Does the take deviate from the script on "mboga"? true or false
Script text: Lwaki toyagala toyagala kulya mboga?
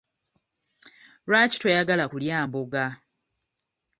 false